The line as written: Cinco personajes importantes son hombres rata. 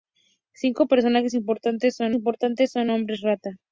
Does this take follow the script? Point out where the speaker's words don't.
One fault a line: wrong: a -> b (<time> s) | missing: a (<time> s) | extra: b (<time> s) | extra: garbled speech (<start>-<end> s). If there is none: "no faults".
extra: importantes son (2.1 s)